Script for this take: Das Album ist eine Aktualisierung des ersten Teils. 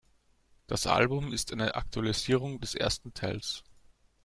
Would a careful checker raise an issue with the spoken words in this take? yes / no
no